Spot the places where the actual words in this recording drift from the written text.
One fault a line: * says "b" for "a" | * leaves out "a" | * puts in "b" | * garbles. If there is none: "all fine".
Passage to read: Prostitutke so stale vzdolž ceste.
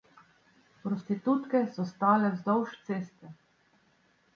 all fine